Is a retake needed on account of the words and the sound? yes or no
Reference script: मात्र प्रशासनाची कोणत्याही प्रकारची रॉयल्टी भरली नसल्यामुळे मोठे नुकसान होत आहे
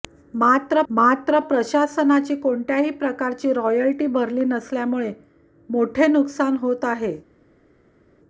yes